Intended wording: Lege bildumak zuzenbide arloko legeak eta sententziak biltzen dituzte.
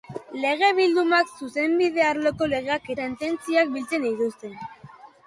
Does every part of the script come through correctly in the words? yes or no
no